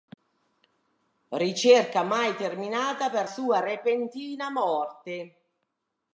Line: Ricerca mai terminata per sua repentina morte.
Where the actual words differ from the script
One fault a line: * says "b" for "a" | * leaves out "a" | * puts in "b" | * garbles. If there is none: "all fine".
all fine